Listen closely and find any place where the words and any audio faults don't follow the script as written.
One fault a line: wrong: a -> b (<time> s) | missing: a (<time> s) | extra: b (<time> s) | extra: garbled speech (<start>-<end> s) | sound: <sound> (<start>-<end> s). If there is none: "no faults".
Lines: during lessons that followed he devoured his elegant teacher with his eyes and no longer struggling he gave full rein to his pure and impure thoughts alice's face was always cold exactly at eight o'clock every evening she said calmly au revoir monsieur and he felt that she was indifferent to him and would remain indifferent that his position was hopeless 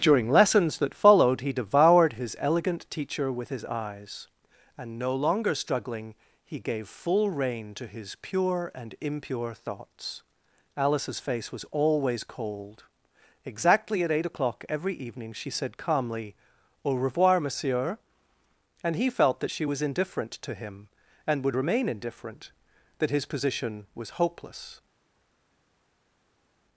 no faults